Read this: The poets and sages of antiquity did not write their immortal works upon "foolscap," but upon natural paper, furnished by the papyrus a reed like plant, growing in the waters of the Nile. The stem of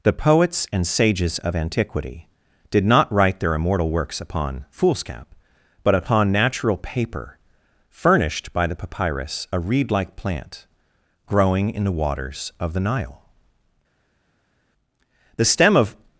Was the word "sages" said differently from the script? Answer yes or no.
no